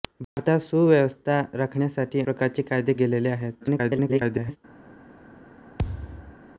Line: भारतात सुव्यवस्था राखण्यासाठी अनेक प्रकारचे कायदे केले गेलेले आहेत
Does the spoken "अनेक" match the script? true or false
false